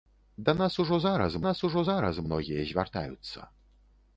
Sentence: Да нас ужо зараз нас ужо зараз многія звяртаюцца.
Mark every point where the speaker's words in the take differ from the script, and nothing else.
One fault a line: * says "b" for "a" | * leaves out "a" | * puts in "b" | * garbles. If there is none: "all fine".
all fine